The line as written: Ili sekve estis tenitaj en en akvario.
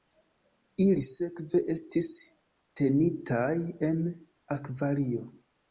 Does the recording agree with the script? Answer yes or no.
no